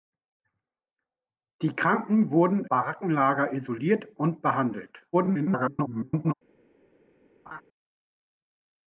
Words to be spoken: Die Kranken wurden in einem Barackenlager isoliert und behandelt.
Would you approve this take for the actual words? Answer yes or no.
no